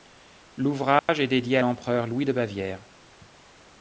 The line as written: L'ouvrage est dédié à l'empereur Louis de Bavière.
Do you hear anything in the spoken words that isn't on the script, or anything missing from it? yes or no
no